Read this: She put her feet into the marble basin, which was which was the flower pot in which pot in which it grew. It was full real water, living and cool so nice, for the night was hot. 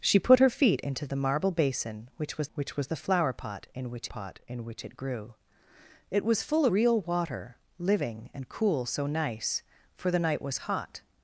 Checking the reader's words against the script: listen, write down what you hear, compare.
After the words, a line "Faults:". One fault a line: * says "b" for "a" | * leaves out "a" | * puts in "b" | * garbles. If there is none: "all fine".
She put her feet into the marble basin, which was which was the flower pot in which pot in which it grew. It was full real water, living and cool so nice, for the night was hot.
Faults:
all fine